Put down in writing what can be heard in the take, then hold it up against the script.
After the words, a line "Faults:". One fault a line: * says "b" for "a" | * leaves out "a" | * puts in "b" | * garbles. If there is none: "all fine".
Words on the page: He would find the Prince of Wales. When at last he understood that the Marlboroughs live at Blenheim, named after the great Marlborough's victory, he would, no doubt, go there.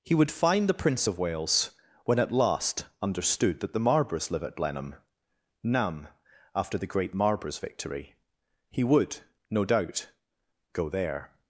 He would find the Prince of Wales. When at last understood that the Marlboroughs live at Blenheim, nam after the great Marlborough's victory, he would, no doubt, go there.
Faults:
* leaves out "he"
* says "nam" for "named"